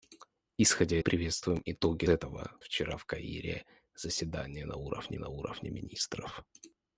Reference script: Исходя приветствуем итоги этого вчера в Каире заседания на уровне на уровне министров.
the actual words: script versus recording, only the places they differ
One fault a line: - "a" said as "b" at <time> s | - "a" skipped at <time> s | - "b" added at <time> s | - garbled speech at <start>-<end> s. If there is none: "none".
none